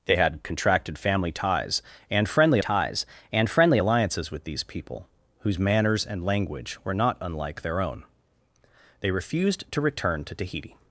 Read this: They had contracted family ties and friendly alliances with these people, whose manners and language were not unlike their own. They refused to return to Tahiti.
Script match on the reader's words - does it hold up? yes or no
no